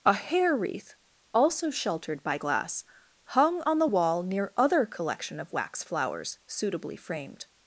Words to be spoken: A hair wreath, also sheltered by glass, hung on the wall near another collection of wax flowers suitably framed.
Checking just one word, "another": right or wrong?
wrong